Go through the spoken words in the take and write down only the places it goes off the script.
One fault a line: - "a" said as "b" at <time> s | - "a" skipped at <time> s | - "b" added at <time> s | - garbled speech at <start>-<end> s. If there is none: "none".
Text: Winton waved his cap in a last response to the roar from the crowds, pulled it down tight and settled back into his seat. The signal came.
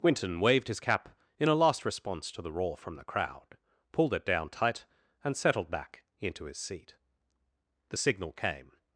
- "crowds" said as "crowd" at 3.0 s